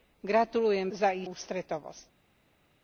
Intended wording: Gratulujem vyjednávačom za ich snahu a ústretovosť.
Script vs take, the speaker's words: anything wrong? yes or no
yes